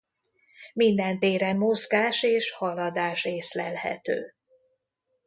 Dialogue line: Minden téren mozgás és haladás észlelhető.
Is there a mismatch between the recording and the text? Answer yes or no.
no